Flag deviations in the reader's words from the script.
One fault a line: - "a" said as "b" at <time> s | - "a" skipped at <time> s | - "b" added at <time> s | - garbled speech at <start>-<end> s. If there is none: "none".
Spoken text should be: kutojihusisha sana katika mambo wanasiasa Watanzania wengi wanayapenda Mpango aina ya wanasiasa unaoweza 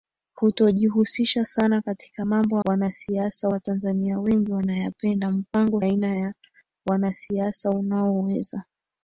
none